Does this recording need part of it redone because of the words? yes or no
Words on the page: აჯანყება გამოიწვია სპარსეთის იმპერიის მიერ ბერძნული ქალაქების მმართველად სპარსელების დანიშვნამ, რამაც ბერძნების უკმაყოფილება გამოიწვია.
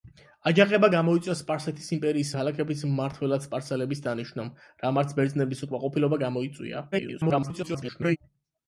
yes